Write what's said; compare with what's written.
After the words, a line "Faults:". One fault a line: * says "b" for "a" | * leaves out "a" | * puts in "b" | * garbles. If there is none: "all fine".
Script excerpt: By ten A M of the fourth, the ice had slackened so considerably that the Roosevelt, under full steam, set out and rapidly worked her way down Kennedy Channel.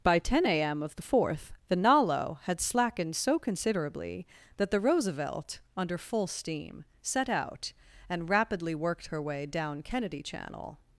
By ten A M of the fourth, the nalo had slackened so considerably that the Roosevelt, under full steam, set out and rapidly worked her way down Kennedy Channel.
Faults:
* says "nalo" for "ice"